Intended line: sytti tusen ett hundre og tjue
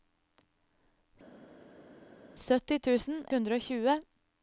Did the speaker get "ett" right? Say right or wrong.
wrong